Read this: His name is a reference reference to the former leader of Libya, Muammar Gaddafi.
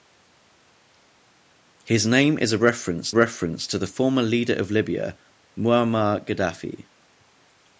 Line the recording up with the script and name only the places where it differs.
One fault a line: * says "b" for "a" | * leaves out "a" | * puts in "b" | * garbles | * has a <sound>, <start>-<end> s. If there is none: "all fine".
all fine